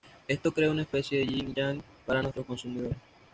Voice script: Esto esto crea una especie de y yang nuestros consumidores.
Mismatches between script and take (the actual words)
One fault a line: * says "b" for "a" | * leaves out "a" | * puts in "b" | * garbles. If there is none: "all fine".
* leaves out "esto"
* puts in "yin"
* puts in "para"